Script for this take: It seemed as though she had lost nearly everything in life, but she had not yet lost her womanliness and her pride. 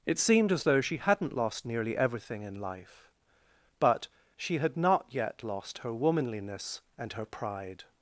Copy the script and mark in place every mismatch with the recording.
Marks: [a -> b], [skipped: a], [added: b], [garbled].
It seemed as though she [had -> hadn't] lost nearly everything in life, but she had not yet lost her womanliness and her pride.